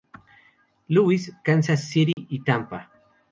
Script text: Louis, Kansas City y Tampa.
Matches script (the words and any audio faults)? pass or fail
fail